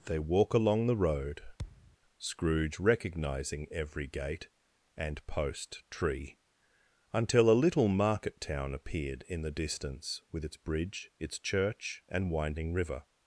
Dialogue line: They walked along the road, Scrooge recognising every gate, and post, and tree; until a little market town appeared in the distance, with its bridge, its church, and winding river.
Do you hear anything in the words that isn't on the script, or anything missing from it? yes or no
yes